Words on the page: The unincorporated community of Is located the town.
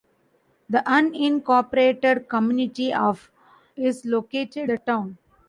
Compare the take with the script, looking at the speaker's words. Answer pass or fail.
pass